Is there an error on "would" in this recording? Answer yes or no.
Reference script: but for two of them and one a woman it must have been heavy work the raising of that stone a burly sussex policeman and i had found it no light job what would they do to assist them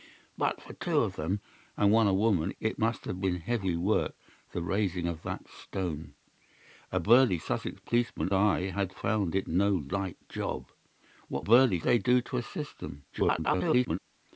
yes